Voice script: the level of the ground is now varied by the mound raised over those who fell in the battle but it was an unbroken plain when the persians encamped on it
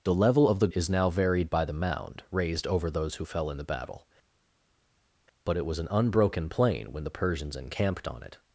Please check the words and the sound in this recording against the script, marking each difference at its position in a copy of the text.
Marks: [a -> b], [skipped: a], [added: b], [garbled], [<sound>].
the level of the [skipped: ground] is now varied by the mound raised over those who fell in the battle but it was an unbroken plain when the persians encamped on it